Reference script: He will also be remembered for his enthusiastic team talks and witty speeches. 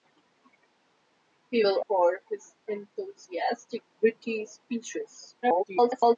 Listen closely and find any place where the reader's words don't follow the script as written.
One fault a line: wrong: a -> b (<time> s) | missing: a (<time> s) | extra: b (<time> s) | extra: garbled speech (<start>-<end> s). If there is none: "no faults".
missing: also be remembered (1.8 s)
missing: team talks and (3.8 s)
extra: garbled speech (5.4-6.2 s)